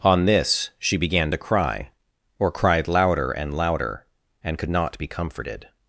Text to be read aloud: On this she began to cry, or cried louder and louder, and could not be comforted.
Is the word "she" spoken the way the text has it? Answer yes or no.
yes